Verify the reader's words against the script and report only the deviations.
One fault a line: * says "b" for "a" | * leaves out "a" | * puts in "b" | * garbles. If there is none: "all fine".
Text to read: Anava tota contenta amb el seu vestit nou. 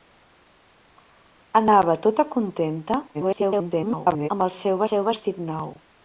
* garbles
* puts in "seu"